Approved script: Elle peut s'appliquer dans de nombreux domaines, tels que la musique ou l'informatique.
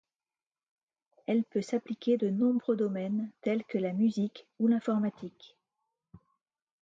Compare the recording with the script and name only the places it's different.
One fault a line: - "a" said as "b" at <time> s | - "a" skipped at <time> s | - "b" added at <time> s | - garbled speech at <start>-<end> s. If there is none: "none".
- "dans" skipped at 2.2 s